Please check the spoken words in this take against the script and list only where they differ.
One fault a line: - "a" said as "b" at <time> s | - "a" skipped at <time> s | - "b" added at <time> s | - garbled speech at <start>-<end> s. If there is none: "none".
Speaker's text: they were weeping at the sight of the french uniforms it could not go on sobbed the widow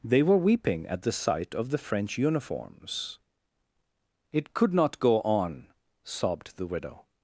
none